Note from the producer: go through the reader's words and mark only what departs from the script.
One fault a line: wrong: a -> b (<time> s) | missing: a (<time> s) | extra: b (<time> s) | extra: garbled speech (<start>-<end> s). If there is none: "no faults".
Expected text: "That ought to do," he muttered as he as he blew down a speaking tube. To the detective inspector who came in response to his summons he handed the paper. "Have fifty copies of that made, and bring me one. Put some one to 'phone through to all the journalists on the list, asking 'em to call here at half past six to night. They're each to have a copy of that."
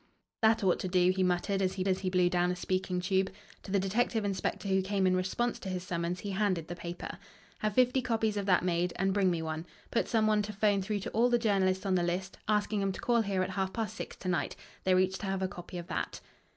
no faults